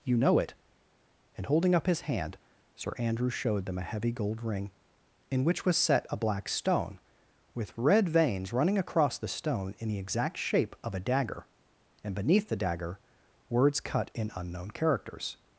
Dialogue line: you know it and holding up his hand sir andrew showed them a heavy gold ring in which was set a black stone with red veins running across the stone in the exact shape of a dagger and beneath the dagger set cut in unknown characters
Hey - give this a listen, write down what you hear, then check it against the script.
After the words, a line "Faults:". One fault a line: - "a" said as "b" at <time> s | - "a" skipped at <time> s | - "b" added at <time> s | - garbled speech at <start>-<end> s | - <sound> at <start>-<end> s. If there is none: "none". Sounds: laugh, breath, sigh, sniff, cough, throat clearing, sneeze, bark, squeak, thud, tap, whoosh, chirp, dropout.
you know it and holding up his hand sir andrew showed them a heavy gold ring in which was set a black stone with red veins running across the stone in the exact shape of a dagger and beneath the dagger words cut in unknown characters
Faults:
- "set" said as "words" at 13.5 s